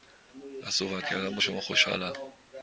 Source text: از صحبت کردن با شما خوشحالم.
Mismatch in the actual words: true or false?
false